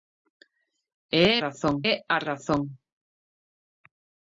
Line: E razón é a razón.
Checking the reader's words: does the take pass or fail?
pass